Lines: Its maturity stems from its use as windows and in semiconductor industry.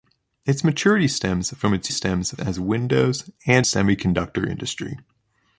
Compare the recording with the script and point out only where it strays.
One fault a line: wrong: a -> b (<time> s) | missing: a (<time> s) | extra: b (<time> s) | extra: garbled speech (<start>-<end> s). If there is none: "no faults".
wrong: use -> stems (1.9 s)
missing: in (3.6 s)